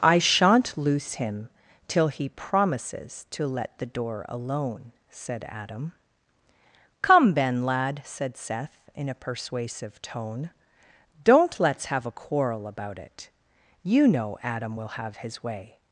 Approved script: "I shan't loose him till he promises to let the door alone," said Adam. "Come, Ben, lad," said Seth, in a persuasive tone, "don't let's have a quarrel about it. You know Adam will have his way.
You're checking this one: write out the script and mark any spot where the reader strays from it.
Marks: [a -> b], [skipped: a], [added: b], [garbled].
"I shan't loose him till he promises to let the door alone," said Adam. "Come, Ben, lad," said Seth, in a persuasive tone, "don't let's have a quarrel about it. You know Adam will have his way.